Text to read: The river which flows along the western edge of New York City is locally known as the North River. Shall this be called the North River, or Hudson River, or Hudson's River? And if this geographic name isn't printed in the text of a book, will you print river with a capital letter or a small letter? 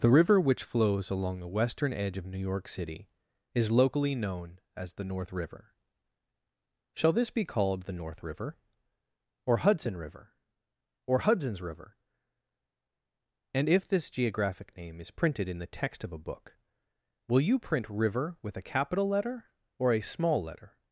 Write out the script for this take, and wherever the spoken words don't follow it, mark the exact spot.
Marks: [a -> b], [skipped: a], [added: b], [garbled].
The river which flows along the western edge of New York City is locally known as the North River. Shall this be called the North River, or Hudson River, or Hudson's River? And if this geographic name [isn't -> is] printed in the text of a book, will you print river with a capital letter or a small letter?